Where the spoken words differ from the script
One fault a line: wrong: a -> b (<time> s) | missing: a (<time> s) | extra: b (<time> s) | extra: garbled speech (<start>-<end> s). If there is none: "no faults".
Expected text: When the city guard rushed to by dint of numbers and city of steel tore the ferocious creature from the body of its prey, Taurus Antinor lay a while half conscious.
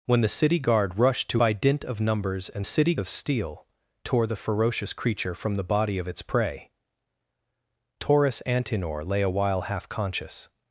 no faults